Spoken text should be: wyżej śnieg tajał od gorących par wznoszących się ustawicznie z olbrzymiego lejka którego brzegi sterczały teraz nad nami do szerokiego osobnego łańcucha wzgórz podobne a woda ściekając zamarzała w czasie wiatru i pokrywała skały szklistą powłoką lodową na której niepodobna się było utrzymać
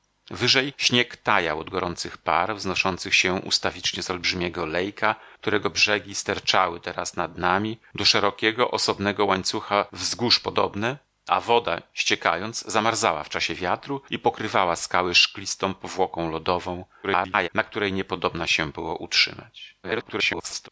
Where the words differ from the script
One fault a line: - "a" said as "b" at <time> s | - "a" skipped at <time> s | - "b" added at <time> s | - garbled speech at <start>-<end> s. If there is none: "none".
- garbled speech at 17.0-17.5 s
- garbled speech at 19.8-20.7 s